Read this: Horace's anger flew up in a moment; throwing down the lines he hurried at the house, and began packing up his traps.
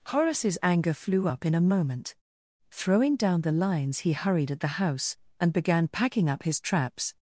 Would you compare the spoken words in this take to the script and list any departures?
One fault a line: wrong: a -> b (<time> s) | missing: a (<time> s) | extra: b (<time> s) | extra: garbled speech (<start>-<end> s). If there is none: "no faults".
no faults